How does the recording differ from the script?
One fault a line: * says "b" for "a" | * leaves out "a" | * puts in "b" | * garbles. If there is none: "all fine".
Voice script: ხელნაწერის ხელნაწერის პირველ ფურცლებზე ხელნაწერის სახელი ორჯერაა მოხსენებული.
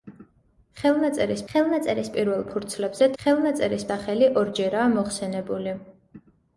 all fine